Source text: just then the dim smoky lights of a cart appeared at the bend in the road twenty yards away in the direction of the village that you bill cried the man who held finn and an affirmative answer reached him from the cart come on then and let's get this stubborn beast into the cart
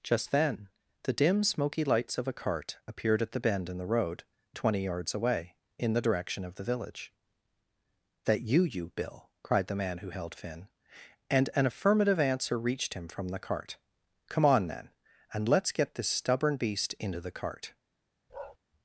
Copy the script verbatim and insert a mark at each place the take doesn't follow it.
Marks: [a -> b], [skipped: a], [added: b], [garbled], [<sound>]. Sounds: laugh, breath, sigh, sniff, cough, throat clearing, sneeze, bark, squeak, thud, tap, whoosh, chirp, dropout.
just then the dim smoky lights of a cart appeared at the bend in the road twenty yards away in the direction of the village that you [added: you] bill cried the man who held finn and an affirmative answer reached him from the cart come on then and let's get this stubborn beast into the cart [bark]